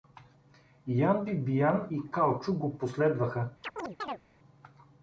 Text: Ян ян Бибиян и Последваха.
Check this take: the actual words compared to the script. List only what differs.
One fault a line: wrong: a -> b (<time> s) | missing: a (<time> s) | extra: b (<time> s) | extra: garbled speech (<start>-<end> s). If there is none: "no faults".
missing: ян (1.2 s)
extra: Калчо го (2.1 s)